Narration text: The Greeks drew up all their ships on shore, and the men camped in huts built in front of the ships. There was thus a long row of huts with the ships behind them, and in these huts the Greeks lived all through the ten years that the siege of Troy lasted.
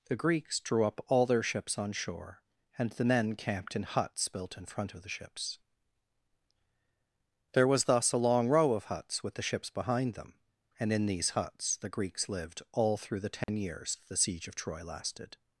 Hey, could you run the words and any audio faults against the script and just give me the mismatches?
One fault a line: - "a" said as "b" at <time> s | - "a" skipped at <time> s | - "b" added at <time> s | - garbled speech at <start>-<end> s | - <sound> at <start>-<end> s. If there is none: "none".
- dropout at 13.4-13.5 s
- "that" skipped at 14.0 s